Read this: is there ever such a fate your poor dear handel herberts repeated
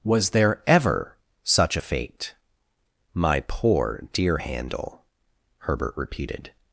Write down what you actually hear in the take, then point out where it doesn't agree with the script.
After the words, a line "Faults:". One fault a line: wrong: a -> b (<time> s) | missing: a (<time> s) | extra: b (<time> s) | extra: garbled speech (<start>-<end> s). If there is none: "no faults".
was there ever such a fate my poor dear handel herbert repeated
Faults:
wrong: is -> was (0.0 s)
wrong: your -> my (3.1 s)
wrong: herberts -> herbert (5.6 s)